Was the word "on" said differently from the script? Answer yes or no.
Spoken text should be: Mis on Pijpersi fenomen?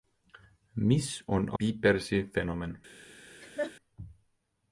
no